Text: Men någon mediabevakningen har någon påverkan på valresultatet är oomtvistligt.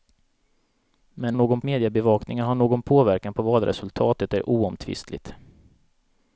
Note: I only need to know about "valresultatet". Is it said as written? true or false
true